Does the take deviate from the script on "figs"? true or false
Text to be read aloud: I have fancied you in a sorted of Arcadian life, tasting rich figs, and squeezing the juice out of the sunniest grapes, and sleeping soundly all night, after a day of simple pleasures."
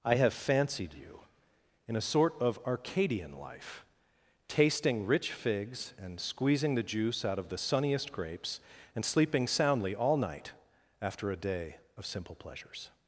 false